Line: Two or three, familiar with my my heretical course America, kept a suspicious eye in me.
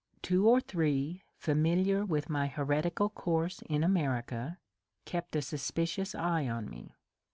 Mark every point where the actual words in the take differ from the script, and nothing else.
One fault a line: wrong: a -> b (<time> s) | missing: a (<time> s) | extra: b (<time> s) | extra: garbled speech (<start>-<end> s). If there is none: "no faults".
missing: my (2.5 s)
extra: in (3.6 s)
wrong: in -> on (6.5 s)